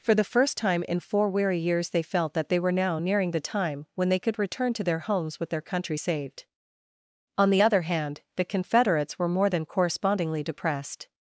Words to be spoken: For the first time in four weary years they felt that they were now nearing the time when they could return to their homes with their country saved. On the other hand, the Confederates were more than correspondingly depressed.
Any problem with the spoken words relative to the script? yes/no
no